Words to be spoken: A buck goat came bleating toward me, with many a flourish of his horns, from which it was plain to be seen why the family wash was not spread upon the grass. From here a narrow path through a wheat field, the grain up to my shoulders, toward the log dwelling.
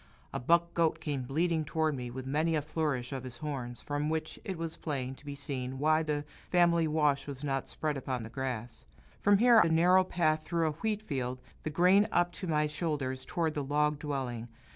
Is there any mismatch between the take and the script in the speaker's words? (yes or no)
no